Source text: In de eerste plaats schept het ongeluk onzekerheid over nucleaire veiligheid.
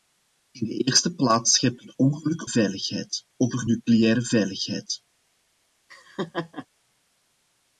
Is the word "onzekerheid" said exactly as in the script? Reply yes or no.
no